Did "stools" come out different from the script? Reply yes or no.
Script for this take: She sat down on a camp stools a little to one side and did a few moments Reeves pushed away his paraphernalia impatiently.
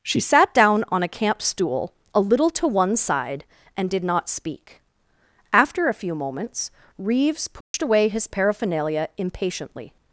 yes